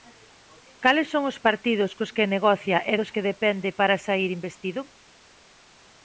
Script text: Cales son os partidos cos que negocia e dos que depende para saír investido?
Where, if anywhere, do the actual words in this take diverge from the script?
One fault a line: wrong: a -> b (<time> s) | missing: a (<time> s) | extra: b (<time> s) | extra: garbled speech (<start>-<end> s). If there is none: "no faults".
no faults